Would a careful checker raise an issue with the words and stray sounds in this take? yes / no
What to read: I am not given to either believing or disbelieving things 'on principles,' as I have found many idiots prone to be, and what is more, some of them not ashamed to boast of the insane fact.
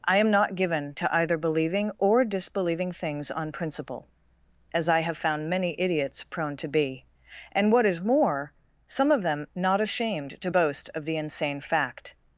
yes